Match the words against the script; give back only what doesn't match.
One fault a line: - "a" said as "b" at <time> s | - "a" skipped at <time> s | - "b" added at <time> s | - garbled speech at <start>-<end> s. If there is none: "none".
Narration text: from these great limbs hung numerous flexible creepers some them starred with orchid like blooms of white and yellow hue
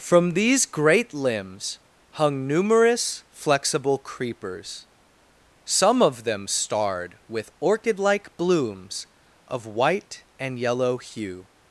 - "of" added at 6.0 s